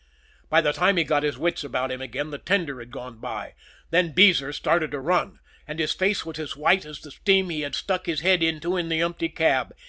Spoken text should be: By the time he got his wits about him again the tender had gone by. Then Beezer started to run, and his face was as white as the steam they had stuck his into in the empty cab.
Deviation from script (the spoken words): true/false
true